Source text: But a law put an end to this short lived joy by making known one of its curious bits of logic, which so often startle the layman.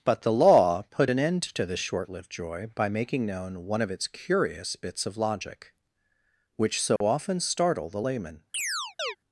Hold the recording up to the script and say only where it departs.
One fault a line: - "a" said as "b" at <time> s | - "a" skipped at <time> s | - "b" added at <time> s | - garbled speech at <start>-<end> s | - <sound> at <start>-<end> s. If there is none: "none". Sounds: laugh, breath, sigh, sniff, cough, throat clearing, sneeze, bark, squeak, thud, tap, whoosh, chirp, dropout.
- "a" said as "the" at 0.2 s
- dropout at 7.0-7.0 s
- chirp at 8.5-9.2 s